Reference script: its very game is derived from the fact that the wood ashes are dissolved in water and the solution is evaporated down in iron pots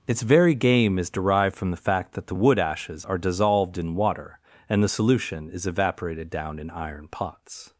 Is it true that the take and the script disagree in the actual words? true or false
false